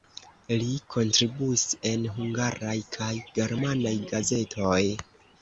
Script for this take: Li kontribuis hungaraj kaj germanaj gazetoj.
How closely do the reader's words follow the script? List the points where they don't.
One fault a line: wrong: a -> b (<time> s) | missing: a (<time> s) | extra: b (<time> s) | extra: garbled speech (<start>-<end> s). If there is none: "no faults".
extra: en (1.9 s)